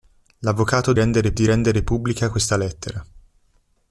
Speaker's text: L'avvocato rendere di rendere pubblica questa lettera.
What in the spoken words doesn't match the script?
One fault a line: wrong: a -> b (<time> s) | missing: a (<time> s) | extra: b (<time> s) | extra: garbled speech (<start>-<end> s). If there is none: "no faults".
no faults